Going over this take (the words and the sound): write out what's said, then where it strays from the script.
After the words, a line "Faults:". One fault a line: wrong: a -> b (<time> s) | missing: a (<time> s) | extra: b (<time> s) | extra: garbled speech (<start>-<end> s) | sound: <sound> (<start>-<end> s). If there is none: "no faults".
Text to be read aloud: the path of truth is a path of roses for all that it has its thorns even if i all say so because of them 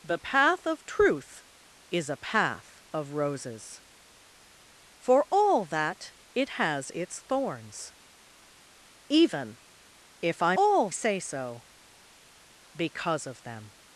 the path of truth is a path of roses for all that it has its thorns even if i all say so because of them
Faults:
no faults